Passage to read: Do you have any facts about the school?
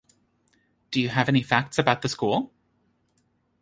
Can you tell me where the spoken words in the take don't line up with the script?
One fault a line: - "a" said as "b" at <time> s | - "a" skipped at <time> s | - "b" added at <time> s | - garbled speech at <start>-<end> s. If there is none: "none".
none